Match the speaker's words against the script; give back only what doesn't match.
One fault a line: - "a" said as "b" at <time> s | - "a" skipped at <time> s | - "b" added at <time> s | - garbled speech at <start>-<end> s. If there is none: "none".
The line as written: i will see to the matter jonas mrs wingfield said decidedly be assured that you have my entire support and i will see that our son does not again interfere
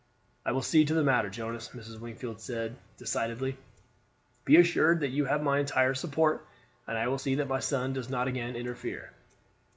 - "our" said as "my" at 7.5 s